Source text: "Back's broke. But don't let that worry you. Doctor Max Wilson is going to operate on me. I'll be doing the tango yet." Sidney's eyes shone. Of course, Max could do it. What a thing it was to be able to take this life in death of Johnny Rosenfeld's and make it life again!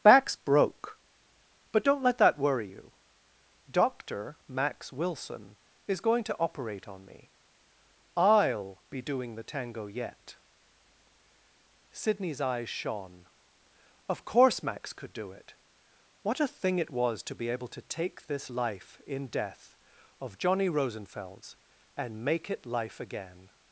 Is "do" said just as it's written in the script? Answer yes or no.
yes